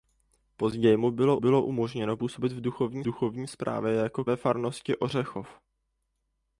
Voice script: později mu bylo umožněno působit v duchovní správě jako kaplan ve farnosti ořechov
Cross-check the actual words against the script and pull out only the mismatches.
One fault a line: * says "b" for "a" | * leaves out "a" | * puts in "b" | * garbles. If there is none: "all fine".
* puts in "bylo"
* puts in "duchovní"
* leaves out "kaplan"